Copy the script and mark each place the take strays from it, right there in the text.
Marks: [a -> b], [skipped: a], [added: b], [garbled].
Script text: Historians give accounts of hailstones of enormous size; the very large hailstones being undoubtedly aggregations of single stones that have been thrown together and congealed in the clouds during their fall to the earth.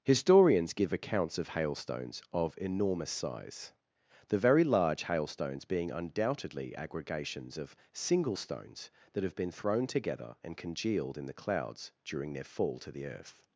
Historians give accounts of hailstones of enormous size; the very large hailstones being undoubtedly aggregations of single stones that have been thrown together and congealed in the clouds during their fall to the earth.